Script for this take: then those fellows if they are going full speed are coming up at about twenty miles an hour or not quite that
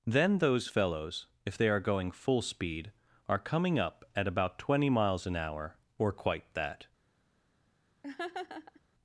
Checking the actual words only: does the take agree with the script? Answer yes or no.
no